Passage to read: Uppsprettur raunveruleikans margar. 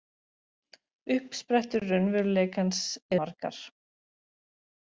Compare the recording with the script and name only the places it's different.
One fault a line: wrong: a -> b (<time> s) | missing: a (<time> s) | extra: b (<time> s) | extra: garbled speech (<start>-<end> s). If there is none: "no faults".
no faults